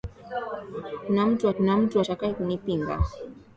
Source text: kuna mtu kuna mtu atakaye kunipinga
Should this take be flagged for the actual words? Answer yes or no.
no